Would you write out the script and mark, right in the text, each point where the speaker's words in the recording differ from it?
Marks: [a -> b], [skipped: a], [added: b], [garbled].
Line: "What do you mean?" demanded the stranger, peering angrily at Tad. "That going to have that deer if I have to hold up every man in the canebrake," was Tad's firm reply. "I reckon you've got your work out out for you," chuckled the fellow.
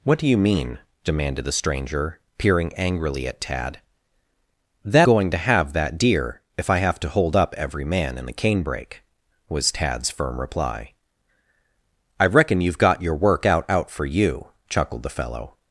"What do you mean?" demanded the stranger, peering angrily at Tad. "That going to have that deer if I have to hold up every man in the canebrake," was Tad's firm reply. "I reckon you've got your work out out for you," chuckled the fellow.